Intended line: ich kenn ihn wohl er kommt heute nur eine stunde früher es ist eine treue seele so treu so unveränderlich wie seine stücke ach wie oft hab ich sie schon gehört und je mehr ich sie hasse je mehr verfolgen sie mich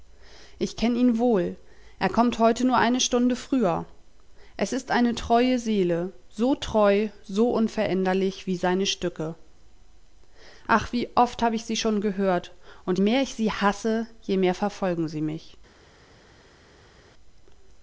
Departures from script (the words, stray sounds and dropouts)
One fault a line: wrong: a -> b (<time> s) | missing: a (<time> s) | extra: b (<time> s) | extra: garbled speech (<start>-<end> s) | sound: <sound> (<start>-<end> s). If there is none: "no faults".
missing: je (13.0 s)